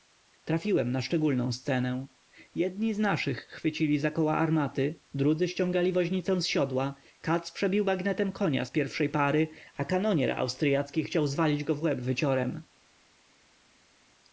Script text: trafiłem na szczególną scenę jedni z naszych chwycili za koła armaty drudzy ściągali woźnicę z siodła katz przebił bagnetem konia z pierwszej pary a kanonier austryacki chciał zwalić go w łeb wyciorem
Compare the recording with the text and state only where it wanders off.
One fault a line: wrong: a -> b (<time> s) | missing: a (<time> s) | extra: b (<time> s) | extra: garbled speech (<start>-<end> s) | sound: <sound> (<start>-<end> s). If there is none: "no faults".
no faults